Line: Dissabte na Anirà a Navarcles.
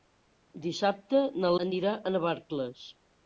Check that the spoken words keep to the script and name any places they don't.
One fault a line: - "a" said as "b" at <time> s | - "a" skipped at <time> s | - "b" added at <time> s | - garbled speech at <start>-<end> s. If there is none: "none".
none